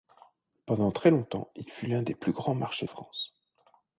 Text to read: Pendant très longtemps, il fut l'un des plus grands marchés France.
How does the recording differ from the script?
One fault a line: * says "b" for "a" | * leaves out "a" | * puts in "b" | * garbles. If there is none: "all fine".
all fine